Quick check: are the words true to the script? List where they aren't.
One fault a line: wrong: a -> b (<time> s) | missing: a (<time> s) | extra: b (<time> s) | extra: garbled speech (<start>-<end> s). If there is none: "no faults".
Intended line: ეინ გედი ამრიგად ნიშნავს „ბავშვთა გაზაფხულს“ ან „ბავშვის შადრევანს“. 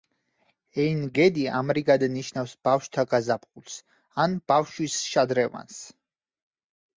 no faults